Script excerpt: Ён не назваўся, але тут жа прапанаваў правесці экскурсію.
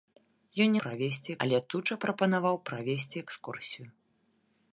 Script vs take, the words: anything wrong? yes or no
yes